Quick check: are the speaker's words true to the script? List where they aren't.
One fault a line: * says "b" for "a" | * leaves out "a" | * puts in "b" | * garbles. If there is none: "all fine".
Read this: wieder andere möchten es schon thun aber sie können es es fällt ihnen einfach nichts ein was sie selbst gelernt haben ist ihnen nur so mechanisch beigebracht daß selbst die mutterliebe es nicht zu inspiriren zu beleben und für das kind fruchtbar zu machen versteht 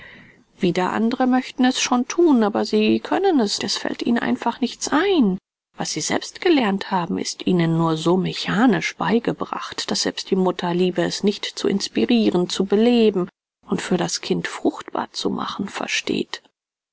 all fine